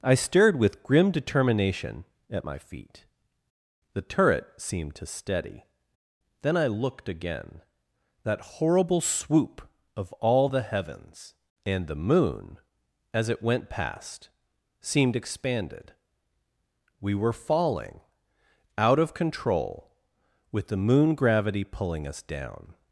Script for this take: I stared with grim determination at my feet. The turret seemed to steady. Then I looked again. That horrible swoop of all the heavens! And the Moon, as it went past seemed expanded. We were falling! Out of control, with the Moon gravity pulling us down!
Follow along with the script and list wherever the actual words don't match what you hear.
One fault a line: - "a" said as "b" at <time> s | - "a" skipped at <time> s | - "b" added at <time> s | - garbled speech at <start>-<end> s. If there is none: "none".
none